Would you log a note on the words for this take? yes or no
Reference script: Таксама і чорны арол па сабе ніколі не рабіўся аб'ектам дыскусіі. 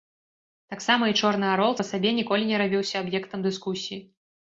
no